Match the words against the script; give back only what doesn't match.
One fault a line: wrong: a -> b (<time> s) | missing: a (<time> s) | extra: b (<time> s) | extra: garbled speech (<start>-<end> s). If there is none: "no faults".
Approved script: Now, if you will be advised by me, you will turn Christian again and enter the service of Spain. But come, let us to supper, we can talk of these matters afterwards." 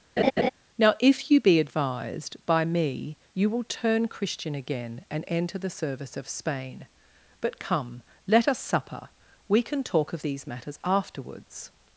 missing: will (1.4 s)
missing: to (8.6 s)